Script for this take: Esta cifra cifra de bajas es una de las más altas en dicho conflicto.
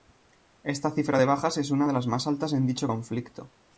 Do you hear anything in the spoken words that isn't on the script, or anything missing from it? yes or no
yes